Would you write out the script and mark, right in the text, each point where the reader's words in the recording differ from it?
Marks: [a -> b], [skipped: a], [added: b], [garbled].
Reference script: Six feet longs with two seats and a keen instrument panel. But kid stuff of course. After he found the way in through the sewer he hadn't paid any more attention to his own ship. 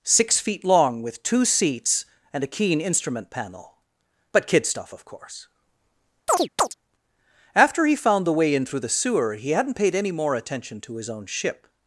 Six feet [longs -> long] with two seats and a keen instrument panel. But kid stuff of course. After he found the way in through the sewer he hadn't paid any more attention to his own ship.